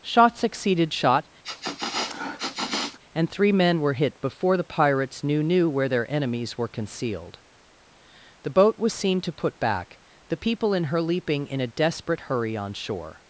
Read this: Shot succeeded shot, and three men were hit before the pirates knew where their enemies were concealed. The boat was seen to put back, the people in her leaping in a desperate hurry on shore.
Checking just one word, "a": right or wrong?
right